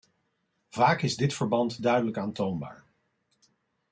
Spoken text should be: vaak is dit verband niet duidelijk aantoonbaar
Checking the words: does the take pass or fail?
fail